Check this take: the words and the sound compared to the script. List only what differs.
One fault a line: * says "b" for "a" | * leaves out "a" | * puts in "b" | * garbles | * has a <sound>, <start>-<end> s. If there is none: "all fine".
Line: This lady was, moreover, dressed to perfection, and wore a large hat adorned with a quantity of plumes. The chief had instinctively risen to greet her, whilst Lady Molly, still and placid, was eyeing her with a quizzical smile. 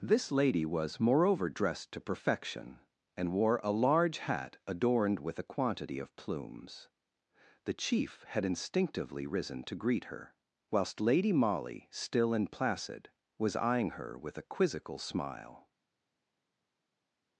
all fine